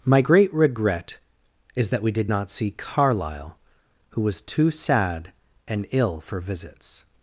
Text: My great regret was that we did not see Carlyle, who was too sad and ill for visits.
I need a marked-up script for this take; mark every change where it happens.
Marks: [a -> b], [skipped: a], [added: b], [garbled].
My great regret [was -> is] that we did not see Carlyle, who was too sad and ill for visits.